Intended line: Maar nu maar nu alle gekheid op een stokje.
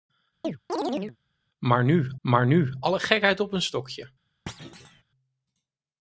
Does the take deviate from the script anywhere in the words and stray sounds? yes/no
yes